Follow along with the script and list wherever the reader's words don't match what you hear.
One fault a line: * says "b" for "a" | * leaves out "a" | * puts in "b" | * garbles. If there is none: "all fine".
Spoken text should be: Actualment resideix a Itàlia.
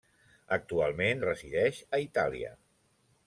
all fine